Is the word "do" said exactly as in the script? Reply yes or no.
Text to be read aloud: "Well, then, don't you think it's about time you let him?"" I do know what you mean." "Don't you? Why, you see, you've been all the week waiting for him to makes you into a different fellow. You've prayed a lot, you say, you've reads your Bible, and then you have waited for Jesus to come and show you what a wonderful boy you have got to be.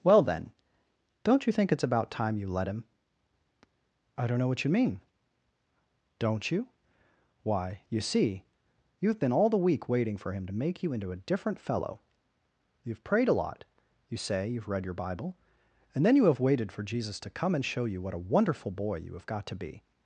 no